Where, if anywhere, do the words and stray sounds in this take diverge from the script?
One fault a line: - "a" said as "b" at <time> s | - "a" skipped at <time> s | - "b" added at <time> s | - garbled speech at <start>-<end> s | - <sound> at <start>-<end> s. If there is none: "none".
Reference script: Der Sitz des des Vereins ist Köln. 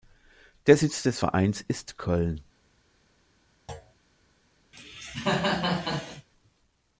- "des" skipped at 1.2 s
- thud at 3.7-4.0 s
- cough at 4.7-6.3 s